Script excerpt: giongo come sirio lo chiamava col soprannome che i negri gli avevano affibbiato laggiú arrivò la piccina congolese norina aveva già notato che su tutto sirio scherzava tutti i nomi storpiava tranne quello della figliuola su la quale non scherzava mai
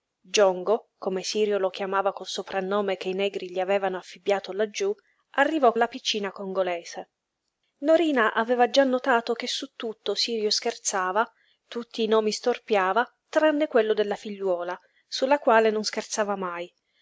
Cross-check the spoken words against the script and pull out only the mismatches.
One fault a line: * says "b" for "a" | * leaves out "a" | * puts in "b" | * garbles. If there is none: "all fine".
all fine